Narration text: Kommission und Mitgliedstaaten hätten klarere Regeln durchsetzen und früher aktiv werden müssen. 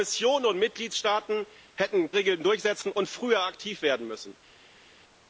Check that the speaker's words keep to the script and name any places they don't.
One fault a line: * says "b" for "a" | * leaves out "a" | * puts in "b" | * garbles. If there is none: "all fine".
* leaves out "klarere"